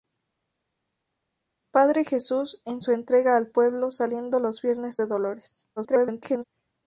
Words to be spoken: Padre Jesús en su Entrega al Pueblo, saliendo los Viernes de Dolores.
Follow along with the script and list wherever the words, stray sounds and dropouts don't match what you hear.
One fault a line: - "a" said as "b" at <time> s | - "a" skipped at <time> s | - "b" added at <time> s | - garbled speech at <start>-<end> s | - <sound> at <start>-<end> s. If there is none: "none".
- garbled speech at 5.8-6.4 s